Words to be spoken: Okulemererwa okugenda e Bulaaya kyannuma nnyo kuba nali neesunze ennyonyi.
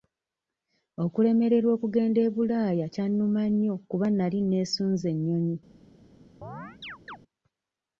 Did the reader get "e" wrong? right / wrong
right